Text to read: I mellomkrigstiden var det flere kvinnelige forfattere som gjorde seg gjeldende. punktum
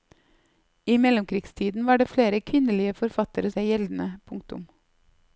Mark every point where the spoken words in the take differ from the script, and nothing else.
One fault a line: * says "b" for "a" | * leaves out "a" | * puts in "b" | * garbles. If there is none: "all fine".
* leaves out "som gjorde"